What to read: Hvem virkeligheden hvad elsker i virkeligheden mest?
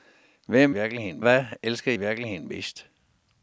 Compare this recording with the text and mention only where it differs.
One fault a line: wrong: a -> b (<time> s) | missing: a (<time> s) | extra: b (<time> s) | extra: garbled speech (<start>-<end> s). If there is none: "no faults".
no faults